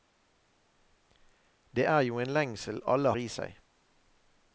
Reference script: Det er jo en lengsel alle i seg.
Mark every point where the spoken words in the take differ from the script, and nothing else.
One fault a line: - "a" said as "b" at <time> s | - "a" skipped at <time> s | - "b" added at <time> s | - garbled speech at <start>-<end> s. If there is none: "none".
none